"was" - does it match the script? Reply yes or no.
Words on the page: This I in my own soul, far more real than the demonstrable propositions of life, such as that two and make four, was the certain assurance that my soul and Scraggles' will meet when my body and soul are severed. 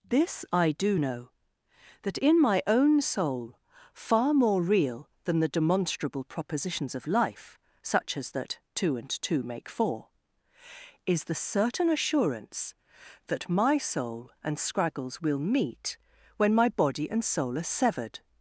no